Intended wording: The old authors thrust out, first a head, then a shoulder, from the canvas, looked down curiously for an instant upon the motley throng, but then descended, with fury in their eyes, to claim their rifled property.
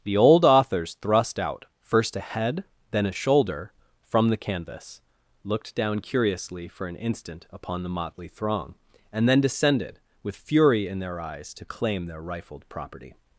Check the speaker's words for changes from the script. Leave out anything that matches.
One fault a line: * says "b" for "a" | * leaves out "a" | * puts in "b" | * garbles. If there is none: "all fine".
* says "and" for "but"